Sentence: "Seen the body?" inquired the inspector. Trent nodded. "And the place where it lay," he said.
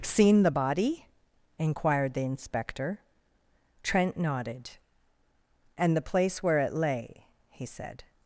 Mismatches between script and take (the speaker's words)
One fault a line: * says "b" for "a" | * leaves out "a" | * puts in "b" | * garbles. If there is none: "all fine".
all fine